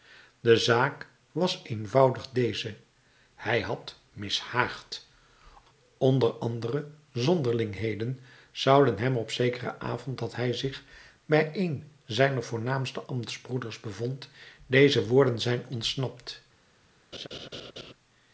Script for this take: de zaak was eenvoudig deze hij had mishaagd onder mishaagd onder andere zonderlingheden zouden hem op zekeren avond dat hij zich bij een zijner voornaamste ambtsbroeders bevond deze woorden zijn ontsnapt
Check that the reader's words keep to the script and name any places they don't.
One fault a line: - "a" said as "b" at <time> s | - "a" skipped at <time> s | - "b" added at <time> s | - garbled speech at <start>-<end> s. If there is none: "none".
- "mishaagd onder" skipped at 6.3 s